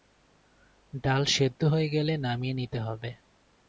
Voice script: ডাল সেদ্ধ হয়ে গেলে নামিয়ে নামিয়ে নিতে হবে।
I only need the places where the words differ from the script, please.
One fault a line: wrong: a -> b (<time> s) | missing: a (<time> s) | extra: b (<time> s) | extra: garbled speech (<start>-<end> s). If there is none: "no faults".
missing: নামিয়ে (2.5 s)